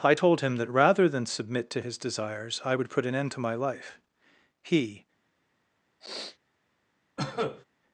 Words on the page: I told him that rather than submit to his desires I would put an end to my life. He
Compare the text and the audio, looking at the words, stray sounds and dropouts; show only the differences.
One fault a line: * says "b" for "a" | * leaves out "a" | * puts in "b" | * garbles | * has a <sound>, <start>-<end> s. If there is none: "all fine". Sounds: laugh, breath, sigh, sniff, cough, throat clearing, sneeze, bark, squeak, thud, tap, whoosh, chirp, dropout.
* has a sniff, 6.0-6.4 s
* has a cough, 7.2-7.6 s